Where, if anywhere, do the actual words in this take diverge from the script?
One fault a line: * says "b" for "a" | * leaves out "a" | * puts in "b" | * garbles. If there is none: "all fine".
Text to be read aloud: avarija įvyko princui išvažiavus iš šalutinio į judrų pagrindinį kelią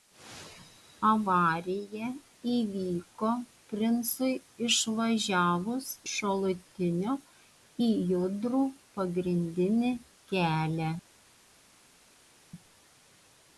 * leaves out "iš"